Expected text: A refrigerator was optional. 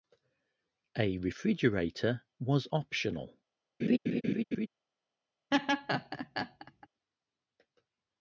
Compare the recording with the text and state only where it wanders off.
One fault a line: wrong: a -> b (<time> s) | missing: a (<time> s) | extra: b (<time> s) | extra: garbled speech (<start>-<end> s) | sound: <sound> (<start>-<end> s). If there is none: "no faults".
sound: laugh (3.8-4.7 s)
sound: laugh (5.5-6.9 s)